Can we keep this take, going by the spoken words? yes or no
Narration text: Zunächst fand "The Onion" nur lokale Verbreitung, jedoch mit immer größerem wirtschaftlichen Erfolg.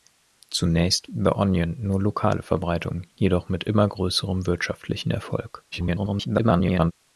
no